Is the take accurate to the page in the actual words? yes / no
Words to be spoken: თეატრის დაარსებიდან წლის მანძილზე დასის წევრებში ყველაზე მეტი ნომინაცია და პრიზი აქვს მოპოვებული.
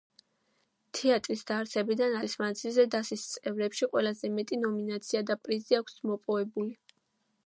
yes